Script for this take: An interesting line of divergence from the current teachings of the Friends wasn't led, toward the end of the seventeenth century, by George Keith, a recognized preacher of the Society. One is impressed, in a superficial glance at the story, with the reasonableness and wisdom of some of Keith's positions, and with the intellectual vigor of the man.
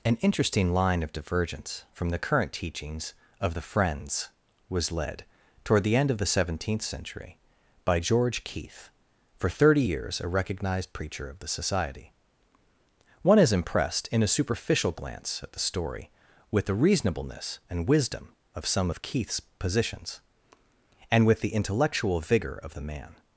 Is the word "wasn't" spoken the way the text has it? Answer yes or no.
no